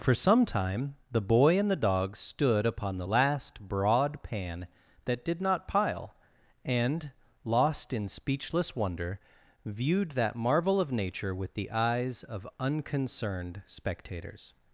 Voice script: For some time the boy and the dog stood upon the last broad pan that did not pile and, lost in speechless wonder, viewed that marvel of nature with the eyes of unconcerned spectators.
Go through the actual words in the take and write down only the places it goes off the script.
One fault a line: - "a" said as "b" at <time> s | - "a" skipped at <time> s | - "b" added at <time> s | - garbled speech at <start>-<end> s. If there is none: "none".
none